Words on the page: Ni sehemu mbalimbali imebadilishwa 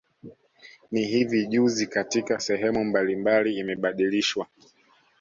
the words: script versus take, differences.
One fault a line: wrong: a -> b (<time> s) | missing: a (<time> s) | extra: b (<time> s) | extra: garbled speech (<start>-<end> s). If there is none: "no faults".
extra: hivi juzi katika (1.1 s)